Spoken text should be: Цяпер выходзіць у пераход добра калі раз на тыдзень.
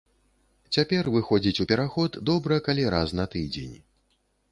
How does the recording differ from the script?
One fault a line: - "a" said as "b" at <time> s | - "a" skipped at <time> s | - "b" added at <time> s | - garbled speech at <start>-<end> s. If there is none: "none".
none